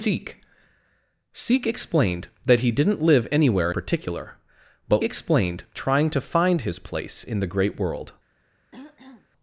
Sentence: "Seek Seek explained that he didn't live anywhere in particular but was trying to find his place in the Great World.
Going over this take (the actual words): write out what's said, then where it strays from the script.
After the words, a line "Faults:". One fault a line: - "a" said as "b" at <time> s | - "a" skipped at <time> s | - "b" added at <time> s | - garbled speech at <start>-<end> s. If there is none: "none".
"Seek Seek explained that he didn't live anywhere particular but explained trying to find his place in the Great World.
Faults:
- "in" skipped at 3.7 s
- "was" said as "explained" at 5.0 s